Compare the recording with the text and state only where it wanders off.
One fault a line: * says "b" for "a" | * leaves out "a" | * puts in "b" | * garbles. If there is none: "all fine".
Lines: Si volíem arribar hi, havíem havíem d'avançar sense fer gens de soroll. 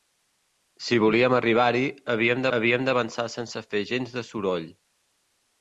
all fine